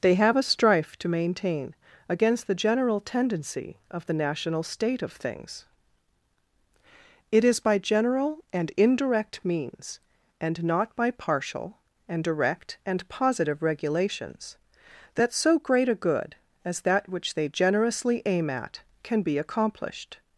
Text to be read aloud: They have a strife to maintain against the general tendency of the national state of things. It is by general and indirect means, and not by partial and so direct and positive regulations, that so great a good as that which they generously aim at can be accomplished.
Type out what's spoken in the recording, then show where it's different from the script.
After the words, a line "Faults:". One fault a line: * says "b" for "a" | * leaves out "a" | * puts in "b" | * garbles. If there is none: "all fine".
They have a strife to maintain against the general tendency of the national state of things. It is by general and indirect means, and not by partial and direct and positive regulations, that so great a good as that which they generously aim at can be accomplished.
Faults:
* leaves out "so"